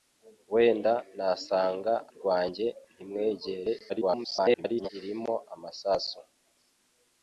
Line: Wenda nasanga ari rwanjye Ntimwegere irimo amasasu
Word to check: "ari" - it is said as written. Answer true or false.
false